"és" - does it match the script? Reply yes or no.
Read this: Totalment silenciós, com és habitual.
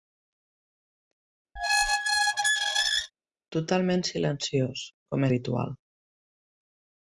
no